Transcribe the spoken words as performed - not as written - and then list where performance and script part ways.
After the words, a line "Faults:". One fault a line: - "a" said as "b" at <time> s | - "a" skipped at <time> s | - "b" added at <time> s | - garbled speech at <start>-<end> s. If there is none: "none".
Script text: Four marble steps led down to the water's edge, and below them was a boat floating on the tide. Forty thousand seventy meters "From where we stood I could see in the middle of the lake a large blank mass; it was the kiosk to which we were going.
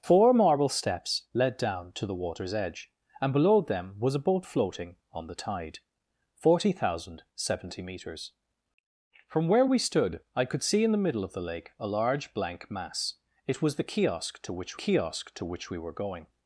Four marble steps led down to the water's edge, and below them was a boat floating on the tide. Forty thousand seventy meters "From where we stood I could see in the middle of the lake a large blank mass; it was the kiosk to which kiosk to which we were going.
Faults:
- "kiosk to which" added at 14.7 s